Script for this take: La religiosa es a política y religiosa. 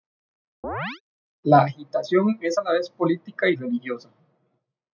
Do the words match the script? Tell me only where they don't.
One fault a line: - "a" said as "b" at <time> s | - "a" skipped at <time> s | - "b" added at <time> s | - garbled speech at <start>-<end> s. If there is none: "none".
- "religiosa" said as "agitación" at 1.6 s
- "la vez" added at 2.6 s